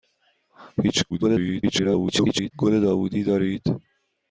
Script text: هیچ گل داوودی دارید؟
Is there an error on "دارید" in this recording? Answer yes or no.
no